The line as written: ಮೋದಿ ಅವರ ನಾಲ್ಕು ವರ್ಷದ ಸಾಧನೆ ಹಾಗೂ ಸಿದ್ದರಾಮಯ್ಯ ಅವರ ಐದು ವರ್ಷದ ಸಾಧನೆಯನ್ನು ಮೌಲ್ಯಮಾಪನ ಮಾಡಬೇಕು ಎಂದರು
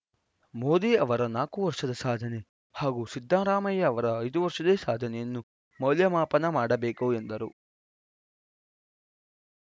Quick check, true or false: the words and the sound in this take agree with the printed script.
true